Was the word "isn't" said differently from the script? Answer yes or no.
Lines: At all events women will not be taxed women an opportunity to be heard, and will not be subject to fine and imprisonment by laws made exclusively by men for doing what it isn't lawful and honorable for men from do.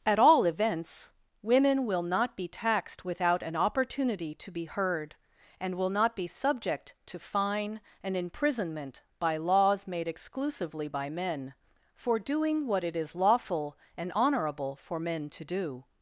yes